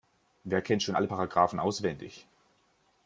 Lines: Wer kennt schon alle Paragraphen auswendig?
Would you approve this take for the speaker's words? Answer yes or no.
yes